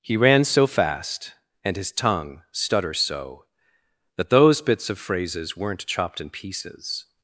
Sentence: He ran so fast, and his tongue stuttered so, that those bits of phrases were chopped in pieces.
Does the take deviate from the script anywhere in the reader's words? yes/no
yes